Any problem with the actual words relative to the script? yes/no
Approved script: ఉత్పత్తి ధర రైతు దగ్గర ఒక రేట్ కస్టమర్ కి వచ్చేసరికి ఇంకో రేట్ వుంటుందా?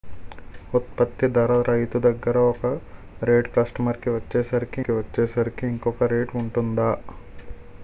yes